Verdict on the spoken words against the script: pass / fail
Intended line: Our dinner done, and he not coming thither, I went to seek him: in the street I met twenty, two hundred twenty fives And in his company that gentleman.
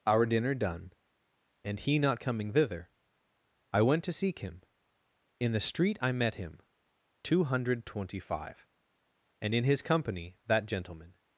fail